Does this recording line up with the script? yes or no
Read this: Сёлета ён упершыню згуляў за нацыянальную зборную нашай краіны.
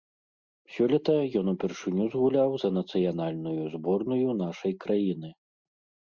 yes